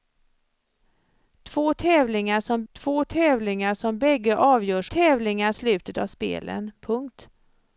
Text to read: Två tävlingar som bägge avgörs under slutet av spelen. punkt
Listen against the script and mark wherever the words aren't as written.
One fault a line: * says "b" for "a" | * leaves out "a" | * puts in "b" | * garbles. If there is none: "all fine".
* puts in "två tävlingar som"
* says "tävlingar" for "under"